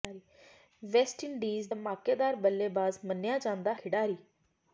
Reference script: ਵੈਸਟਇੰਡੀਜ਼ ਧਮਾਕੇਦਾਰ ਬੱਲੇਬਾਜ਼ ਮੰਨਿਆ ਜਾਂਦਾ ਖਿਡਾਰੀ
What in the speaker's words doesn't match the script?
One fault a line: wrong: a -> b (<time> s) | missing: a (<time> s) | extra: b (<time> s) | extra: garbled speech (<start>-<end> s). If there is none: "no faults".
no faults